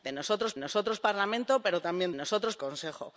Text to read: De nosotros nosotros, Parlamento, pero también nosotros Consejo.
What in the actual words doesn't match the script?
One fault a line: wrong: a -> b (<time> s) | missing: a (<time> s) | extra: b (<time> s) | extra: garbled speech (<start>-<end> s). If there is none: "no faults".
no faults